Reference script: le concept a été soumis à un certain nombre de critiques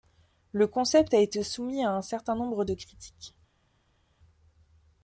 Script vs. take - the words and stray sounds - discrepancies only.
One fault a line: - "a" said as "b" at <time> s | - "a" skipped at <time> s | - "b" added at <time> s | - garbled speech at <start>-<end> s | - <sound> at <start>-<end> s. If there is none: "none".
none